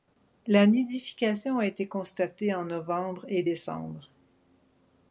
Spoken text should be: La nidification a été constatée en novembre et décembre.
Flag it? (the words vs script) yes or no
no